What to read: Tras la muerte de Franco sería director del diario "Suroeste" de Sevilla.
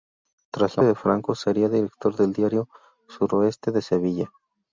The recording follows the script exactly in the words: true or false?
false